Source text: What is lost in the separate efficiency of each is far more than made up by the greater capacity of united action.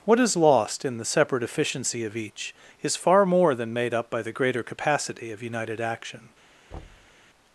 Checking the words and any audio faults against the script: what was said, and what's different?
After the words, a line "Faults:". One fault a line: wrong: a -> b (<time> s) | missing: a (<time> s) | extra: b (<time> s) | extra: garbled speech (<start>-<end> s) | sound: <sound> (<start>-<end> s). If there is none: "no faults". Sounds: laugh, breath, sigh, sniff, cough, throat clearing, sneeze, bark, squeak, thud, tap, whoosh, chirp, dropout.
What is lost in the separate efficiency of each is far more than made up by the greater capacity of united action.
Faults:
sound: thud (6.7-7.2 s)